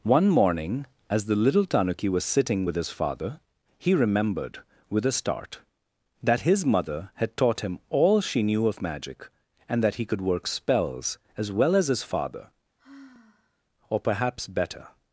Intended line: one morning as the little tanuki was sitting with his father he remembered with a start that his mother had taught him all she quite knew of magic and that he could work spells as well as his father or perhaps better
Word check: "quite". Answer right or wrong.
wrong